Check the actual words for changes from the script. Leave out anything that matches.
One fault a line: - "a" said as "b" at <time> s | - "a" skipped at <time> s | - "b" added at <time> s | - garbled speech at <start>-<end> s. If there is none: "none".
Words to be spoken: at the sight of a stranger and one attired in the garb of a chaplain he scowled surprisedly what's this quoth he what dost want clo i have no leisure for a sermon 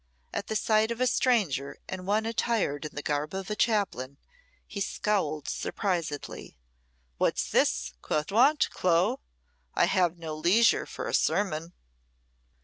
- "he what dost" skipped at 8.3 s